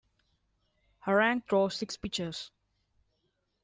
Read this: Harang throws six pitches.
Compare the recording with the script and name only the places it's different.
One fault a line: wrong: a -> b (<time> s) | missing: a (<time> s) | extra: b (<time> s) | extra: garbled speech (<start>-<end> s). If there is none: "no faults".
no faults